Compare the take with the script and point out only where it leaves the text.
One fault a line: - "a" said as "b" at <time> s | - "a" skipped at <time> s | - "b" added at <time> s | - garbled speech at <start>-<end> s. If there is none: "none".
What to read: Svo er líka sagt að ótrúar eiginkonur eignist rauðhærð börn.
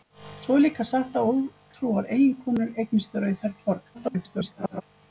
- garbled speech at 3.9-4.8 s